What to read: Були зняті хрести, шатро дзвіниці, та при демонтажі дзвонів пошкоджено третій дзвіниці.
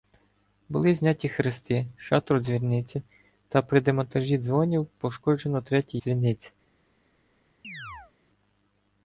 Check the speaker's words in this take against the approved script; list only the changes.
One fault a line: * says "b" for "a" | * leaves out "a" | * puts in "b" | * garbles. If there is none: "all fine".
all fine